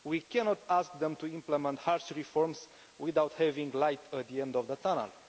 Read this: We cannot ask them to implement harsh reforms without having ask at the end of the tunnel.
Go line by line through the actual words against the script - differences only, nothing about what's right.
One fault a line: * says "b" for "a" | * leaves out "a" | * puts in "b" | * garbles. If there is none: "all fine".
* says "light" for "ask"